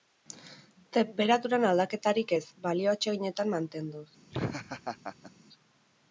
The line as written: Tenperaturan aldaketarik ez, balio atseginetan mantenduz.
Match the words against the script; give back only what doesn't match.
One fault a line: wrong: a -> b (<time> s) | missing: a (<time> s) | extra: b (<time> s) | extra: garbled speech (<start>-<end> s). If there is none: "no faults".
no faults